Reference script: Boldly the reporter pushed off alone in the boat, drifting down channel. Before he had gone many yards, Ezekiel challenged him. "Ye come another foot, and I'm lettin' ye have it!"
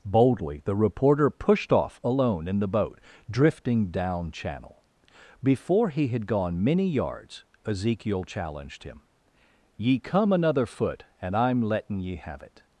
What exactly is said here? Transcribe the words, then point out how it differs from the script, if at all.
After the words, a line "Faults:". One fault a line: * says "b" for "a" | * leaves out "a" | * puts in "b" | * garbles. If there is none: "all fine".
Boldly the reporter pushed off alone in the boat, drifting down channel. Before he had gone many yards, Ezekiel challenged him. "Ye come another foot, and I'm lettin' ye have it!"
Faults:
all fine